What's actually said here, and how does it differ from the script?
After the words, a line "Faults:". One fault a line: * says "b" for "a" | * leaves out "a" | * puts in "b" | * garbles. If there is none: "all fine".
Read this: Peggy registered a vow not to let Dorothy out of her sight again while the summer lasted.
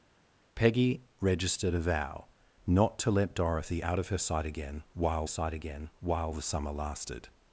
Peggy registered a vow not to let Dorothy out of her sight again while sight again while the summer lasted.
Faults:
* puts in "sight again while"